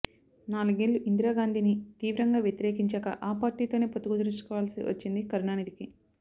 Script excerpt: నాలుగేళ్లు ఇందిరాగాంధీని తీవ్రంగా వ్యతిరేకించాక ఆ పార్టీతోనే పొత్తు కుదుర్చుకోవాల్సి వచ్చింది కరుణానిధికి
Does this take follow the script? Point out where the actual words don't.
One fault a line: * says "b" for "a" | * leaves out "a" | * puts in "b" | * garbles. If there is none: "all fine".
all fine